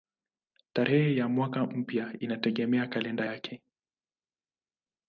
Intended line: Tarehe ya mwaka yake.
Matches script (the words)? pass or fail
fail